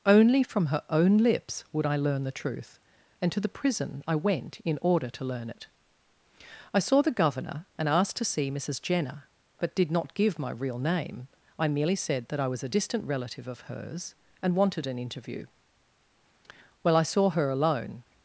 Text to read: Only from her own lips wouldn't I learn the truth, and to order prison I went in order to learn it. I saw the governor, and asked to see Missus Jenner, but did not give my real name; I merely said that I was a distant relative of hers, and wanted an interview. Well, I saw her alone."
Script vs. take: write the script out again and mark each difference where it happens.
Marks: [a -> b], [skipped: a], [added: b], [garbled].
Only from her own lips [wouldn't -> would] I learn the truth, and to [order -> the] prison I went in order to learn it. I saw the governor, and asked to see Missus Jenner, but did not give my real name; I merely said that I was a distant relative of hers, and wanted an interview. Well, I saw her alone."